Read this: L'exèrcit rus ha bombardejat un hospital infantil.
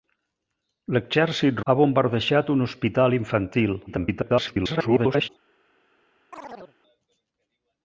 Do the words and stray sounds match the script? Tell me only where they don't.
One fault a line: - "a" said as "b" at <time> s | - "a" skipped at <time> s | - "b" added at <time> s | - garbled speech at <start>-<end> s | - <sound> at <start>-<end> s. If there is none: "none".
- "rus" skipped at 1.6 s
- garbled speech at 3.9-5.3 s
- chirp at 6.3-6.8 s